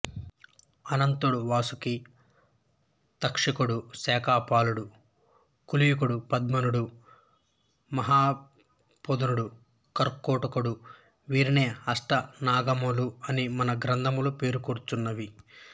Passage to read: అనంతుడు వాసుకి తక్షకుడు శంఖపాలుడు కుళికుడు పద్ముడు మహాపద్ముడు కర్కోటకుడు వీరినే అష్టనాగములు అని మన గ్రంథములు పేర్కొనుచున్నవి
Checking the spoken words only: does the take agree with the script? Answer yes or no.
yes